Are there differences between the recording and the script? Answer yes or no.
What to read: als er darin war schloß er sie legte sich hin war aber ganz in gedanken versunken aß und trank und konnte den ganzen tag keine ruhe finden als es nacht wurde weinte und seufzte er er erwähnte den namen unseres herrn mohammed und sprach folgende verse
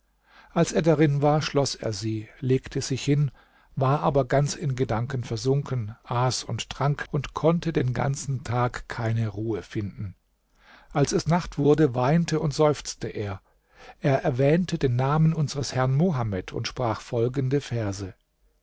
no